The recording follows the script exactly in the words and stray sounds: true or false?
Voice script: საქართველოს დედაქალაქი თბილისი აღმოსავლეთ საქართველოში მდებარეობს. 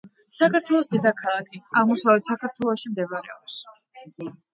false